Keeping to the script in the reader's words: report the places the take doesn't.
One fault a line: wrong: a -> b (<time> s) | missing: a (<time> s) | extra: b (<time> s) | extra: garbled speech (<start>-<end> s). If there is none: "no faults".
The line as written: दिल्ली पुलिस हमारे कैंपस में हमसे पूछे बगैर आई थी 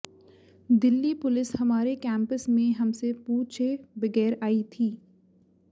no faults